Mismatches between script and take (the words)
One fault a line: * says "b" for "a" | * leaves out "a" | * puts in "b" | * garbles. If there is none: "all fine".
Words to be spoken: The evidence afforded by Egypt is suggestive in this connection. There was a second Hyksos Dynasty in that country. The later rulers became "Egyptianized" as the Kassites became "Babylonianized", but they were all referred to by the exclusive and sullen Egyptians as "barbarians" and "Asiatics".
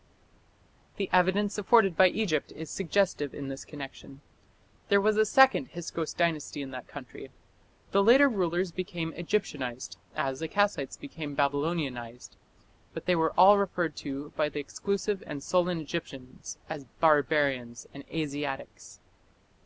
all fine